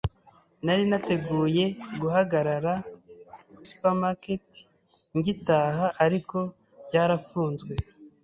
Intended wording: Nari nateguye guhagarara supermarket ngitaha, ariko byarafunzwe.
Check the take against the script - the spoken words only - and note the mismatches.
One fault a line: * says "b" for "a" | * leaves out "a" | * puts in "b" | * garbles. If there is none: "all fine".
all fine